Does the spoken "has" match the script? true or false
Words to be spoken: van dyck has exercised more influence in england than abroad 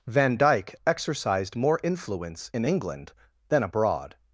false